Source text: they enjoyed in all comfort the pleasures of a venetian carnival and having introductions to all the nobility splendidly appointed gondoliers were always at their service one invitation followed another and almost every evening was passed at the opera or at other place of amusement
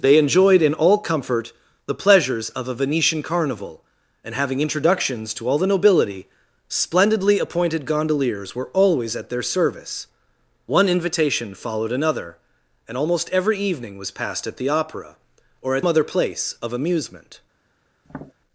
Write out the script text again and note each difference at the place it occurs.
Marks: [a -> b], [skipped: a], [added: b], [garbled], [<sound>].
they enjoyed in all comfort the pleasures of a venetian carnival and having introductions to all the nobility splendidly appointed gondoliers were always at their service one invitation followed another and almost every evening was passed at the opera or at other place of amusement [tap]